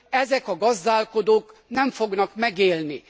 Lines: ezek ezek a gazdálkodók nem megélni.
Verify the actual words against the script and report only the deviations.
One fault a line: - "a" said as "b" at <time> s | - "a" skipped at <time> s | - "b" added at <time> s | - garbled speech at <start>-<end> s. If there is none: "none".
- "ezek" skipped at 0.5 s
- "fognak" added at 1.9 s